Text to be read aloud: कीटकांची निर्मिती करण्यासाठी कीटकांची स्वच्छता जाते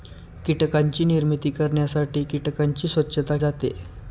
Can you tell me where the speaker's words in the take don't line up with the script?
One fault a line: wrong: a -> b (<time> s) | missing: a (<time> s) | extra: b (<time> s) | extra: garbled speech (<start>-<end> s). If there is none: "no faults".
no faults